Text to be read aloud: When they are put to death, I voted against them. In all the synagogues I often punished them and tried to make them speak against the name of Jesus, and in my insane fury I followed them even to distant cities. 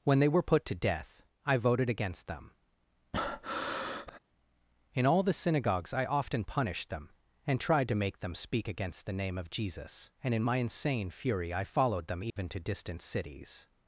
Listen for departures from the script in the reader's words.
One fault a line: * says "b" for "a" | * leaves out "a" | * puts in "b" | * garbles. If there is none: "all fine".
* says "were" for "are"